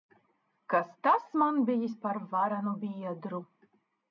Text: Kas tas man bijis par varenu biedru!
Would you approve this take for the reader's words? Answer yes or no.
yes